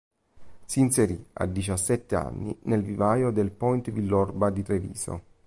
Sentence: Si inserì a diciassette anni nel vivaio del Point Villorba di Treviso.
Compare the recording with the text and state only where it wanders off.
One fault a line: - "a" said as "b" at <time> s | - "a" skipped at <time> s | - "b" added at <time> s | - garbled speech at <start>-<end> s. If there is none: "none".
none